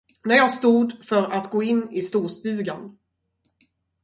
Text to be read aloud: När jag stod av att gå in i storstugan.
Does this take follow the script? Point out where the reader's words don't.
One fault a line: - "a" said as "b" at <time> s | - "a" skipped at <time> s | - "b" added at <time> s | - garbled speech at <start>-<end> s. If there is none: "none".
- "av" said as "för" at 1.0 s